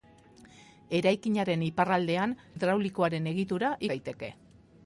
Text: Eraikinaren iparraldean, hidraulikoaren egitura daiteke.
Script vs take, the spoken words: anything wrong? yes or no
no